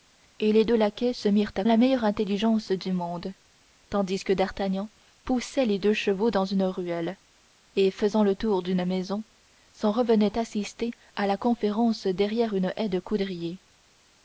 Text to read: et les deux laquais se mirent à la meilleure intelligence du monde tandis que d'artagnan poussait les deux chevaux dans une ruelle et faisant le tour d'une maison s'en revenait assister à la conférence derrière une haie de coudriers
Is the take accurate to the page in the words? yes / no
yes